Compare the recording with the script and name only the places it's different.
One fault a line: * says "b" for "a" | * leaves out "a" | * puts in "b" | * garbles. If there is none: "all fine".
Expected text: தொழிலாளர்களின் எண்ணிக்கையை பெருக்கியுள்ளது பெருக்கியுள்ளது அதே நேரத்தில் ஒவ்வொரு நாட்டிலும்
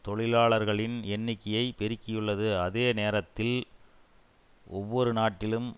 * leaves out "பெருக்கியுள்ளது"